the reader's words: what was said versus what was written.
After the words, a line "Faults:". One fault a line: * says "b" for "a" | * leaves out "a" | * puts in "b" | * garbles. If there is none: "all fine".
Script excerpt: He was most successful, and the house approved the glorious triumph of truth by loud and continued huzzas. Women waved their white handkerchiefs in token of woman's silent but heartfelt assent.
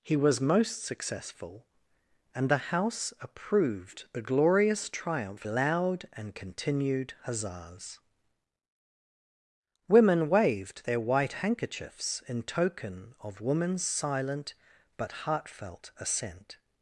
He was most successful, and the house approved the glorious triumph loud and continued huzzas. Women waved their white handkerchiefs in token of woman's silent but heartfelt assent.
Faults:
* leaves out "of truth by"